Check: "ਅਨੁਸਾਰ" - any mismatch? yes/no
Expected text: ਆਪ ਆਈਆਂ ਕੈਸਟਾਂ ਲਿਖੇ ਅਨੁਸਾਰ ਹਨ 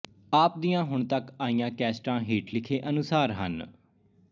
no